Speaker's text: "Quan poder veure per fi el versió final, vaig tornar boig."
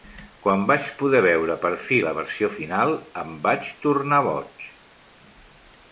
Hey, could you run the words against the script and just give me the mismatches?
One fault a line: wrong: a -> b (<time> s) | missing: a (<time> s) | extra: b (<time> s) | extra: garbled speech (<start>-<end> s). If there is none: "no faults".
extra: vaig (0.7 s)
wrong: el -> la (2.0 s)
extra: em (3.2 s)